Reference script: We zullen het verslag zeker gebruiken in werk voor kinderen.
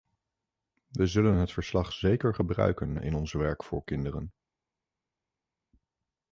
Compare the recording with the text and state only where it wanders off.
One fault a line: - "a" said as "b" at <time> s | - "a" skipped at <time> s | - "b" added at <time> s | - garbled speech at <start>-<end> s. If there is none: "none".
- "ons" added at 3.1 s